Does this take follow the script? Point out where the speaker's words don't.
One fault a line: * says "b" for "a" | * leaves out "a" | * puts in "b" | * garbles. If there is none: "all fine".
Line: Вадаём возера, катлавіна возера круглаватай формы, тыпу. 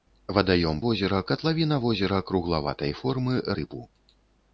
all fine